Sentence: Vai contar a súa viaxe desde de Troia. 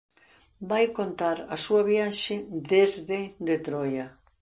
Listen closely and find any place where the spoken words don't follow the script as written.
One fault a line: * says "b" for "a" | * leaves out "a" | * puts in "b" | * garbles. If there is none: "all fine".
all fine